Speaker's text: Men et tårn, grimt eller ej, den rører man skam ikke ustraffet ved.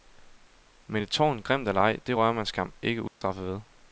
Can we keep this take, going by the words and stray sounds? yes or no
no